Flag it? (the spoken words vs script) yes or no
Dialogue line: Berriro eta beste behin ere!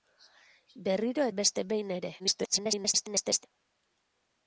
yes